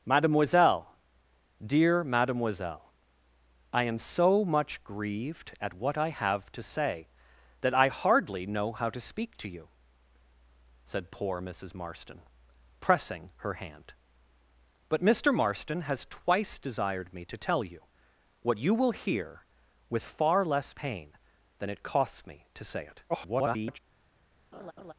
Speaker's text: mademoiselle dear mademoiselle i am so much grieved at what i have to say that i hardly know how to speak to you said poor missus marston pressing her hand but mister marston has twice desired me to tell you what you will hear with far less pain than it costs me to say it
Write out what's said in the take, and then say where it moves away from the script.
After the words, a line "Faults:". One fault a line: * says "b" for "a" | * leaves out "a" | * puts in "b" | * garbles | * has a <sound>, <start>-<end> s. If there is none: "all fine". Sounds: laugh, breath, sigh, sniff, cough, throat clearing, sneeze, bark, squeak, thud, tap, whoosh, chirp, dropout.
mademoiselle dear mademoiselle i am so much grieved at what i have to say that i hardly know how to speak to you said poor missus marston pressing her hand but mister marston has twice desired me to tell you what you will hear with far less pain than it costs me to say it [garbled]
Faults:
* garbles
* has a laugh, 24.5-24.9 s